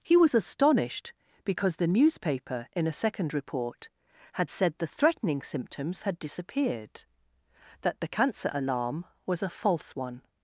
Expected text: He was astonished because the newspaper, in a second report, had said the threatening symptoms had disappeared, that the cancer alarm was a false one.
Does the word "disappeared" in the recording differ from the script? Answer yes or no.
no